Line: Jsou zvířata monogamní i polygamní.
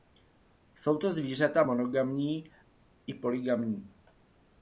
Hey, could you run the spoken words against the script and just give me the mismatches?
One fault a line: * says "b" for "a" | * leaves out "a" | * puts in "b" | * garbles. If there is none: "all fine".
* puts in "to"